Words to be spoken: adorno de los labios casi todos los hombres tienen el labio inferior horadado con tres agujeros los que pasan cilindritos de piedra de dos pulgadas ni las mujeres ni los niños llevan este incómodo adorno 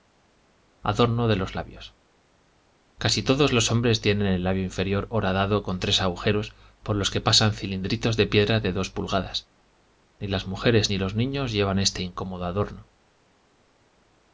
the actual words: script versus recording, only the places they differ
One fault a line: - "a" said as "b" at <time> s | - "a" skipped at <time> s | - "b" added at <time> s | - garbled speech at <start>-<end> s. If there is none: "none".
- "por" added at 6.8 s